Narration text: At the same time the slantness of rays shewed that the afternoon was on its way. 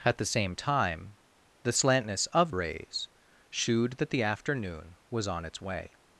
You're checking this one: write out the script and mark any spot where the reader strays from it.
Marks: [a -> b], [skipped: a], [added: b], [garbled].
At the same time the slantness of rays shewed that the afternoon was on its way.